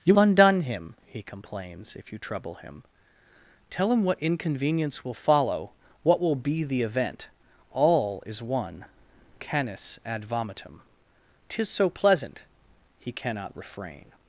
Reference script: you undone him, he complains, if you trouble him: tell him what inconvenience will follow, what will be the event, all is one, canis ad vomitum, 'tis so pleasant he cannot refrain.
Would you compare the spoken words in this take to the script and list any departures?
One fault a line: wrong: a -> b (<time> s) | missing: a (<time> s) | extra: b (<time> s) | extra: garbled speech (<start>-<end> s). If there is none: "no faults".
no faults